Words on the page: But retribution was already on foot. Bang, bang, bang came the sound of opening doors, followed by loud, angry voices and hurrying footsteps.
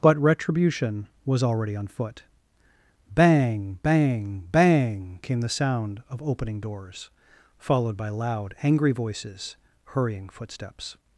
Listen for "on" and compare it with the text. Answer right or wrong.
right